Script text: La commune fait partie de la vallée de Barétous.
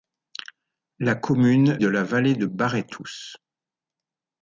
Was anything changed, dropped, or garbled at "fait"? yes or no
yes